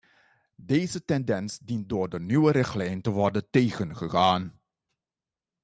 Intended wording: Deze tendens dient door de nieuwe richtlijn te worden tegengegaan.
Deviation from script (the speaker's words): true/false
false